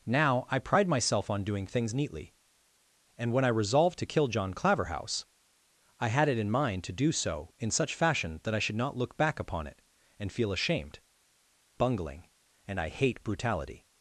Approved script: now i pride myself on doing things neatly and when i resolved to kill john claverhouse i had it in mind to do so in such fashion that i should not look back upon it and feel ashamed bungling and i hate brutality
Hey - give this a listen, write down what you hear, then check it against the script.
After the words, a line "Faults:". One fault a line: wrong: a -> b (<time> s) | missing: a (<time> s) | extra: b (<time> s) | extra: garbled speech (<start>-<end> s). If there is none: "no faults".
now i pride myself on doing things neatly and when i resolved to kill john claverhouse i had it in mind to do so in such fashion that i should not look back upon it and feel ashamed bungling and i hate brutality
Faults:
no faults